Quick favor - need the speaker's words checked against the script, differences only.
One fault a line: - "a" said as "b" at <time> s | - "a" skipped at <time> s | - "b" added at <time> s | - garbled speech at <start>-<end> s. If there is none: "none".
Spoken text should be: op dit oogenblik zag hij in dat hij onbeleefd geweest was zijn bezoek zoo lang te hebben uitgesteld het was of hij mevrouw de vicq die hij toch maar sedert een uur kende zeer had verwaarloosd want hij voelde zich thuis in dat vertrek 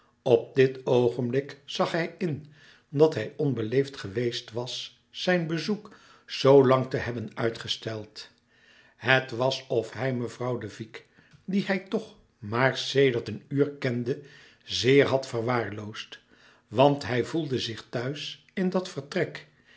none